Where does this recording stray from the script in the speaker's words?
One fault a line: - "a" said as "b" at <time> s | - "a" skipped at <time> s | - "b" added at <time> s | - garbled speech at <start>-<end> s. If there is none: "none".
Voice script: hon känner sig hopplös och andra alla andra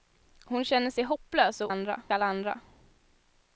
none